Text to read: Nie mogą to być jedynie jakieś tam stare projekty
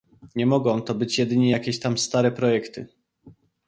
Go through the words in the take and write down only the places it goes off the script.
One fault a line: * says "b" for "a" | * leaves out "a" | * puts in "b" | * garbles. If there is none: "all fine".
all fine